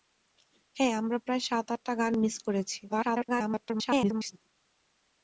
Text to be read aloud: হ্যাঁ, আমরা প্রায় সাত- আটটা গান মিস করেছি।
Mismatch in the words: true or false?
true